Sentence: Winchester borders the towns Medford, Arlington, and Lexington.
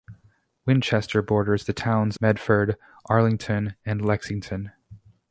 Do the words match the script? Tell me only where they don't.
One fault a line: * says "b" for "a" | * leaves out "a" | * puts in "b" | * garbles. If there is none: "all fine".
all fine